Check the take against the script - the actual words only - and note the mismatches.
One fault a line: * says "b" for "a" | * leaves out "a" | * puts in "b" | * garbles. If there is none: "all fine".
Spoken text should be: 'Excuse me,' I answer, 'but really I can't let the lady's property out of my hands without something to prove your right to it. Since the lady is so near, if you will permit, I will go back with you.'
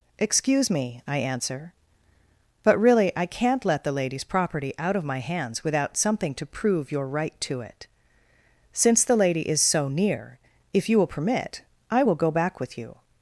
all fine